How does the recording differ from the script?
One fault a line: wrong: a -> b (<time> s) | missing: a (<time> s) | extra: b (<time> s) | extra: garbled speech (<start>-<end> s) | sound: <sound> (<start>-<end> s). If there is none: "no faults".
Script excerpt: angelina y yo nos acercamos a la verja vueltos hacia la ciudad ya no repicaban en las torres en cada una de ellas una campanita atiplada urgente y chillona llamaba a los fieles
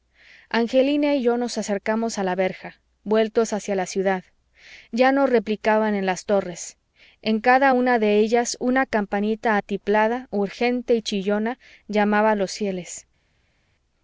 no faults